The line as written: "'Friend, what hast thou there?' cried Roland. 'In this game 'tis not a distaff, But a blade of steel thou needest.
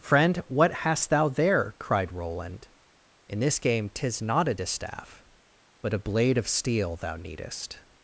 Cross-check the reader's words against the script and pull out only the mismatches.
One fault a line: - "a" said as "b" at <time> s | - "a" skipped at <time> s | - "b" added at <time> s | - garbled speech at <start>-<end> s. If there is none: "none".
none